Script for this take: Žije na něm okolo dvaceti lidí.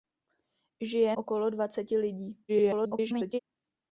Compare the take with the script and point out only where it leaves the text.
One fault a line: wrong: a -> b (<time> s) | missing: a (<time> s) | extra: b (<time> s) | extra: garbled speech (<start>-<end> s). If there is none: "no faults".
missing: na něm (1.2 s)
extra: garbled speech (2.5-3.4 s)